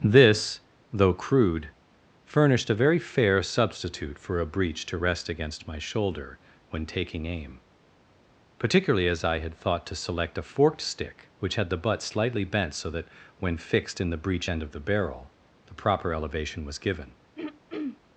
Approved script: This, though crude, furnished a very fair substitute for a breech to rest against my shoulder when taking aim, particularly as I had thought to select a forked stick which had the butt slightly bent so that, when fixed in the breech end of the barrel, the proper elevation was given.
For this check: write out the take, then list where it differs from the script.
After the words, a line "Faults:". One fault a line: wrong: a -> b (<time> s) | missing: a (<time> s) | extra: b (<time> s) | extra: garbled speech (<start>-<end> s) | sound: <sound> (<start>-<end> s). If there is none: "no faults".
This, though crude, furnished a very fair substitute for a breech to rest against my shoulder when taking aim, particularly as I had thought to select a forked stick which had the butt slightly bent so that, when fixed in the breech end of the barrel, the proper elevation was given.
Faults:
sound: throat clearing (17.4-18.0 s)